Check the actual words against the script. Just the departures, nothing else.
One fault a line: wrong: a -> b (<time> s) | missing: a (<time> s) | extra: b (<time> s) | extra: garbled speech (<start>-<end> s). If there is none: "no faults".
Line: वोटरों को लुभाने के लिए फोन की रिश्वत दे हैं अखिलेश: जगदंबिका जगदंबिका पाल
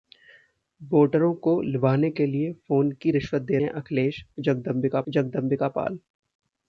no faults